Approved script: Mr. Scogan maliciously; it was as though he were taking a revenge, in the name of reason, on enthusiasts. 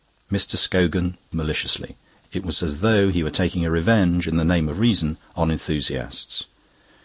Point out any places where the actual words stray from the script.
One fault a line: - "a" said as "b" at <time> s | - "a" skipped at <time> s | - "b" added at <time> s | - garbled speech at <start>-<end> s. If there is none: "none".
none